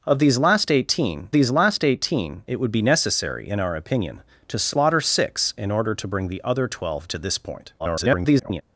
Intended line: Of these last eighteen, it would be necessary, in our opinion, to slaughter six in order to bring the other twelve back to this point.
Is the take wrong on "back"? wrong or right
wrong